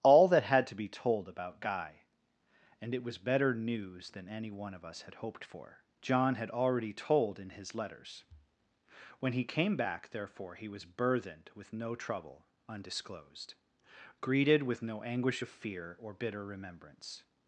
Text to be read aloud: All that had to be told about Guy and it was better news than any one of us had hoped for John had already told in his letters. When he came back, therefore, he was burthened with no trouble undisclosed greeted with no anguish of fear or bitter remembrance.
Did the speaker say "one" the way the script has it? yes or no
yes